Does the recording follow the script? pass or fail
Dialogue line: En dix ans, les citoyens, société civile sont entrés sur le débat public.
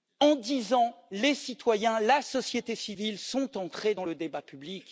fail